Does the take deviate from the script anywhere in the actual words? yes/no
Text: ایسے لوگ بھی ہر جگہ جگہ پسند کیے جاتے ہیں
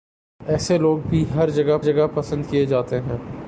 no